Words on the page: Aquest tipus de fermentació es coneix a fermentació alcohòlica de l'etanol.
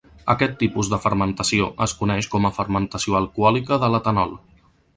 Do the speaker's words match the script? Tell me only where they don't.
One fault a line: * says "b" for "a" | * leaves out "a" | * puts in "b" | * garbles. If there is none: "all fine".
* puts in "com"